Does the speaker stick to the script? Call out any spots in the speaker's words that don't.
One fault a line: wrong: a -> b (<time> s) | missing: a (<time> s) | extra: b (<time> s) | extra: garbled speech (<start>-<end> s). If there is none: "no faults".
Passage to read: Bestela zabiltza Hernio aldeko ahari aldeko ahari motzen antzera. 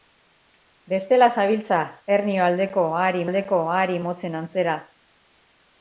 no faults